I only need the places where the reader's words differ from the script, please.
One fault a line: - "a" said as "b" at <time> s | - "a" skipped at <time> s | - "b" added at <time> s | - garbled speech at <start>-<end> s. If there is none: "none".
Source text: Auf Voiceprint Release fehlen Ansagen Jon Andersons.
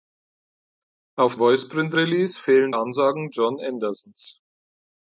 none